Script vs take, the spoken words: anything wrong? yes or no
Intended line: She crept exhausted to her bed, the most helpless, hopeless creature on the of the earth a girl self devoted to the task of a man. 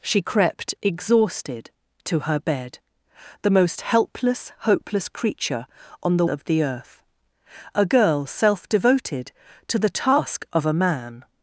no